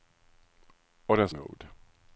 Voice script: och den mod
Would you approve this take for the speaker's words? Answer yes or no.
yes